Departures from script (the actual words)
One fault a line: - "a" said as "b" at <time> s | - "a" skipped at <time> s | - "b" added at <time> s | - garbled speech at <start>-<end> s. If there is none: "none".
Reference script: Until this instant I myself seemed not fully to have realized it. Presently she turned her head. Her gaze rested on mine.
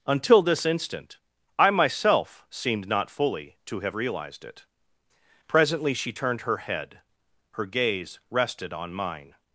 none